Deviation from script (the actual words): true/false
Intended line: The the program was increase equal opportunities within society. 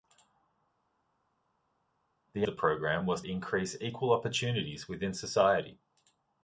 false